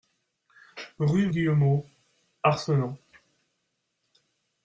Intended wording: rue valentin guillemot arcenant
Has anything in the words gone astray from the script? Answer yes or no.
yes